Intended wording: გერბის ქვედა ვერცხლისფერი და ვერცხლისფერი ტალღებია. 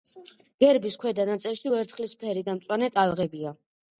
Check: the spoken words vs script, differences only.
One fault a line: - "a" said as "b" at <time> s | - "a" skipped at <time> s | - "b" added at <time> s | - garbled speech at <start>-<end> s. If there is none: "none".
- "ნაწილში" added at 1.3 s
- "ვერცხლისფერი" said as "მწვანე" at 2.6 s